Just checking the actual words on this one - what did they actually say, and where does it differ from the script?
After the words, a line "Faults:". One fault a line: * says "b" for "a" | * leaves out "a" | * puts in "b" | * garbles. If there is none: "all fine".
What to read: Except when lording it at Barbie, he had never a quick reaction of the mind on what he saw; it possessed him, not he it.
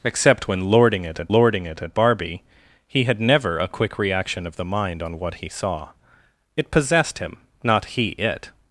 Except when lording it at lording it at Barbie, he had never a quick reaction of the mind on what he saw; it possessed him, not he it.
Faults:
* puts in "lording it at"